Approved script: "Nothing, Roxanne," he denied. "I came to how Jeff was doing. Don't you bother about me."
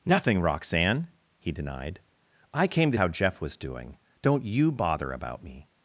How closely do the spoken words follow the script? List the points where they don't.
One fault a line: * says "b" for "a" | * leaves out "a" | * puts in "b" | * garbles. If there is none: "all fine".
all fine